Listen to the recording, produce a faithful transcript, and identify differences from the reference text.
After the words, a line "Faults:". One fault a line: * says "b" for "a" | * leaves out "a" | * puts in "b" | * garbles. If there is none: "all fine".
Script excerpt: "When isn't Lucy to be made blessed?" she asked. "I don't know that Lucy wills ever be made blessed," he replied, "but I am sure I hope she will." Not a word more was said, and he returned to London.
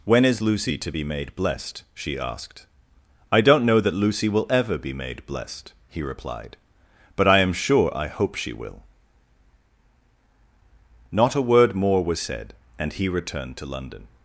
"When is Lucy to be made blessed?" she asked. "I don't know that Lucy will ever be made blessed," he replied, "but I am sure I hope she will." Not a word more was said, and he returned to London.
Faults:
* says "is" for "isn't"
* says "will" for "wills"